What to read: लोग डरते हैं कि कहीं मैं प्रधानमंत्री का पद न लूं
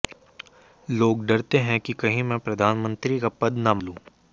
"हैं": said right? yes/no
yes